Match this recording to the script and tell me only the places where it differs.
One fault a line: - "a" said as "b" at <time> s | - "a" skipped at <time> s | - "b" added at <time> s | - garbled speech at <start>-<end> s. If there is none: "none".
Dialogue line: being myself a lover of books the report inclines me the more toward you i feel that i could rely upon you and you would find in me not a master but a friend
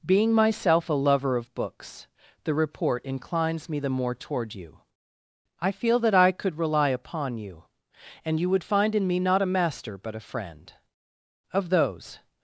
- "of those" added at 11.5 s